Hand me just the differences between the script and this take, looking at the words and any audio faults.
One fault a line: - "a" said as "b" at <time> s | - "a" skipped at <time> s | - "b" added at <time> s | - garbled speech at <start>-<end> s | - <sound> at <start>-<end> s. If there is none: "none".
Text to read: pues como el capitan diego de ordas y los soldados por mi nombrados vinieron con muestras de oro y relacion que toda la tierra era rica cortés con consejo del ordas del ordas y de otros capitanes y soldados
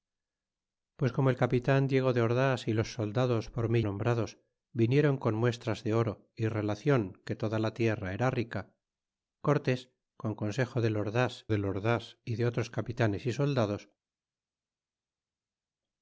none